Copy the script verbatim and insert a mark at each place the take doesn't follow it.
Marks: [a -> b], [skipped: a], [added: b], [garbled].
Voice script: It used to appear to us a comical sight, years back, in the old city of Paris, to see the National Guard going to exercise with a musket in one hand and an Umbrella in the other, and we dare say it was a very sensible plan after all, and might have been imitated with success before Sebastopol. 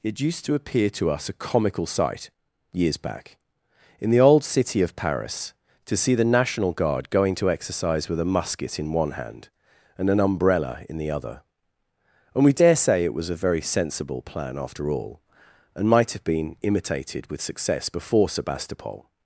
It used to appear to us a comical sight, years back, in the old city of Paris, to see the National Guard going to exercise with a musket in one hand and an Umbrella in the other, and we dare say it was a very sensible plan after all, and might have been imitated with success before Sebastopol.